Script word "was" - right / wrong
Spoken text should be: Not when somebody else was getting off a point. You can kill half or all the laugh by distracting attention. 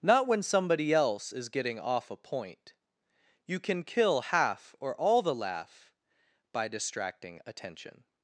wrong